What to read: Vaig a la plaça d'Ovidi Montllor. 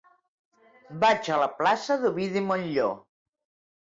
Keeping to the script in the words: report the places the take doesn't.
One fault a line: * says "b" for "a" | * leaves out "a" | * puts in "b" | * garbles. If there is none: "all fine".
all fine